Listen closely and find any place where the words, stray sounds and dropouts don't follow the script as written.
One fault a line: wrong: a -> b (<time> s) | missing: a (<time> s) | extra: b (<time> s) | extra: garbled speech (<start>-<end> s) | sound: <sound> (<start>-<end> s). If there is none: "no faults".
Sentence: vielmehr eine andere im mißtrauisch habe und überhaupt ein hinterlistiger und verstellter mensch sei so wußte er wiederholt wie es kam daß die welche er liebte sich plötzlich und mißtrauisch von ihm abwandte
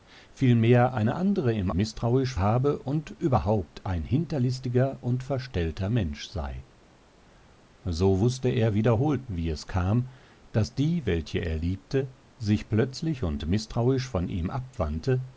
no faults